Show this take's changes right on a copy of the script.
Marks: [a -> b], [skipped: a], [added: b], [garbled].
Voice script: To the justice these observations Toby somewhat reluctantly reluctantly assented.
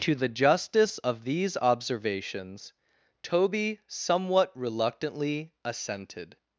To the justice [added: of] these observations Toby somewhat reluctantly [skipped: reluctantly] assented.